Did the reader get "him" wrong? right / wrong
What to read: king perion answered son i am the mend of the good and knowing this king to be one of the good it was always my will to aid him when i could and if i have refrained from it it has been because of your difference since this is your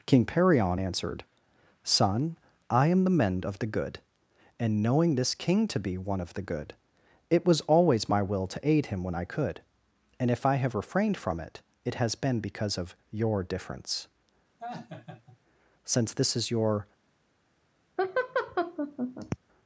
right